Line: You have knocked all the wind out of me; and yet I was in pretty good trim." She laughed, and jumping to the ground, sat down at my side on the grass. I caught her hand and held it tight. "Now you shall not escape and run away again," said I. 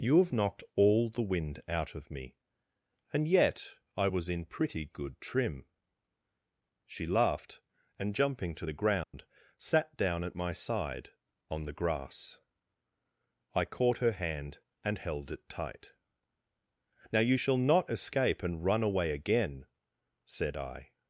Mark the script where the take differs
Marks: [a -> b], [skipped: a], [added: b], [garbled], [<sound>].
You have knocked all the wind out of me; and yet I was in pretty good trim." She laughed, and jumping to the ground, [dropout] sat down at my side on the grass. I caught her hand and held it tight. "Now you shall not escape and run away again," said I.